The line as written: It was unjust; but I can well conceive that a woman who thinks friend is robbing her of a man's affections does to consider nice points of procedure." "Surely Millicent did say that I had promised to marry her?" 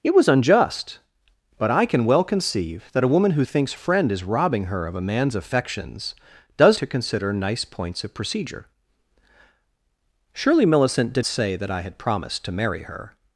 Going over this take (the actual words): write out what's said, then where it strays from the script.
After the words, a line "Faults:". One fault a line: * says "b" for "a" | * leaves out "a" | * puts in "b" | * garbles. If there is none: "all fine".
It was unjust; but I can well conceive that a woman who thinks friend is robbing her of a man's affections does to consider nice points of procedure." "Surely Millicent did say that I had promised to marry her?"
Faults:
all fine